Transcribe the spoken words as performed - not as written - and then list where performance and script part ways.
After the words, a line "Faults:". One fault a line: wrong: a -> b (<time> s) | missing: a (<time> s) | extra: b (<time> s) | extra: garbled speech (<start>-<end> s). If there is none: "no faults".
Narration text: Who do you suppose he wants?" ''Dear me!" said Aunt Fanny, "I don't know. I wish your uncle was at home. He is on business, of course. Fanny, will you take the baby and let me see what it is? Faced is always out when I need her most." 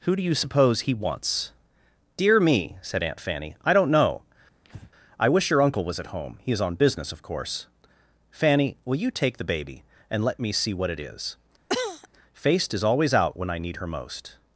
Who do you suppose he wants?" ''Dear me!" said Aunt Fanny, "I don't know. I wish your uncle was at home. He is on business, of course. Fanny, will you take the baby and let me see what it is? Faced is always out when I need her most."
Faults:
no faults